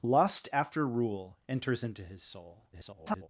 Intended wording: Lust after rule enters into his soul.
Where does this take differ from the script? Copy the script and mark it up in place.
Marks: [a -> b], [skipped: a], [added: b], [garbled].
Lust after rule enters into his soul. [garbled]